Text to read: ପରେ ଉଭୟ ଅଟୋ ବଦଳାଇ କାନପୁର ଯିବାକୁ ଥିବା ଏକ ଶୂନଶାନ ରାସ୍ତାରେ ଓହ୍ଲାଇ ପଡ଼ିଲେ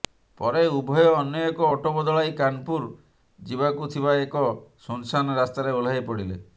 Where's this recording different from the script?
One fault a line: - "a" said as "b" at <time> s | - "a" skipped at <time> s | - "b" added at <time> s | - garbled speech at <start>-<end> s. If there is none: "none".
- "ଅନ୍ୟ ଏକ" added at 1.1 s